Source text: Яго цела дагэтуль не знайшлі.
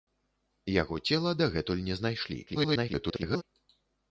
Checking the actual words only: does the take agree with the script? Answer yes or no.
no